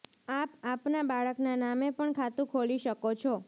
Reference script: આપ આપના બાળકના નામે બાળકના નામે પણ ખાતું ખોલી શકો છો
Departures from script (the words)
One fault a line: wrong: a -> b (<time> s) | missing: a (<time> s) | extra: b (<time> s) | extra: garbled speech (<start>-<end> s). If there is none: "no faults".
missing: બાળકના નામે (1.9 s)